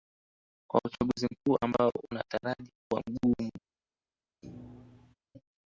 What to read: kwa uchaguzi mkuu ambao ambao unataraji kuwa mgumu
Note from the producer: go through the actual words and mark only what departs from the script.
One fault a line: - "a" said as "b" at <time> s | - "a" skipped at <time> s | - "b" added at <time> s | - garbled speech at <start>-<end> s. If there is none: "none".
- "ambao" skipped at 1.9 s